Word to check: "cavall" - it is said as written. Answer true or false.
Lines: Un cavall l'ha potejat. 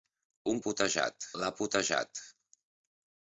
false